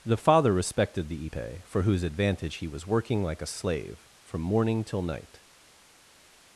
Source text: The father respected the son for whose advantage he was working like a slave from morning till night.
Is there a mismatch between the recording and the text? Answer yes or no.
yes